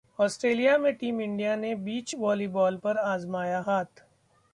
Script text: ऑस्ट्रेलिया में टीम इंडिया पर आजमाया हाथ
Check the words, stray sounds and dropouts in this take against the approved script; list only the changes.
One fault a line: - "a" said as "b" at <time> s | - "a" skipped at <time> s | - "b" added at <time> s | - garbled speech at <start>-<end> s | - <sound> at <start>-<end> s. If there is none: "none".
- "ने बीच वॉलीबॉल" added at 1.6 s